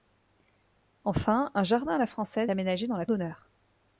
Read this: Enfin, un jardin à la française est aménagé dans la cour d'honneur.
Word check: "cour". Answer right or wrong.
wrong